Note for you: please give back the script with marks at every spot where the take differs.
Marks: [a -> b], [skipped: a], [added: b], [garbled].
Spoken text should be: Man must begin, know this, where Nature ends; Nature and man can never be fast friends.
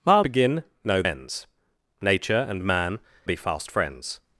Man [skipped: must] begin, know [skipped: this, where Nature] ends; Nature and man [skipped: can never] be fast friends.